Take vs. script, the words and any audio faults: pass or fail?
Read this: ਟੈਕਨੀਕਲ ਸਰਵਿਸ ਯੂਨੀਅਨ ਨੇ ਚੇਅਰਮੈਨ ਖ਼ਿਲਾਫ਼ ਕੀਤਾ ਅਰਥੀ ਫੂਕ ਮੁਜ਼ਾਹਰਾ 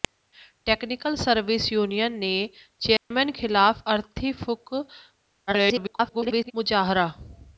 fail